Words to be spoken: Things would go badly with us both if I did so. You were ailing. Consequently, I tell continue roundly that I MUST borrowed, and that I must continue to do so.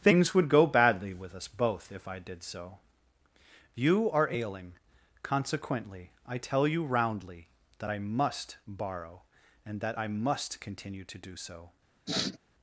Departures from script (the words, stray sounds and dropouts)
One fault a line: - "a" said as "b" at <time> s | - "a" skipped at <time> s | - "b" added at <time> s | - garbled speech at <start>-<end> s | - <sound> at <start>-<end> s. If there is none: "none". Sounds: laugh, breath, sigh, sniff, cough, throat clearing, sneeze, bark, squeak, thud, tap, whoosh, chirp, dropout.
- "were" said as "are" at 4.1 s
- "continue" said as "you" at 6.7 s
- "borrowed" said as "borrow" at 8.7 s
- sniff at 12.1-12.4 s